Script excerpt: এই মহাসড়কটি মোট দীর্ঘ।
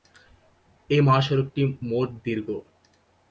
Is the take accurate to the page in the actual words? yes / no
yes